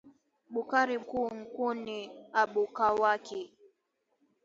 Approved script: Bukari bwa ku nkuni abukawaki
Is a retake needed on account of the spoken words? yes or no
yes